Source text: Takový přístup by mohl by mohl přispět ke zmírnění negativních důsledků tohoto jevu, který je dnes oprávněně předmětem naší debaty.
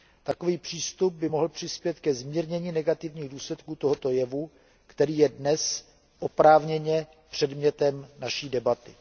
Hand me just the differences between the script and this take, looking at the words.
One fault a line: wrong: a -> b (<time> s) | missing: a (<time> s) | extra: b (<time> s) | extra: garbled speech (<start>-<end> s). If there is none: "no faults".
missing: by mohl (1.5 s)